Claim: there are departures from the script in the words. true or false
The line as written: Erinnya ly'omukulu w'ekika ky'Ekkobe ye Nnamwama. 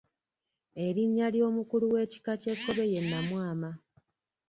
false